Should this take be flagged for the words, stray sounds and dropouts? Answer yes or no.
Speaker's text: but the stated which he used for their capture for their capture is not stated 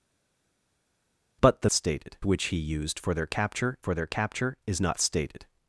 no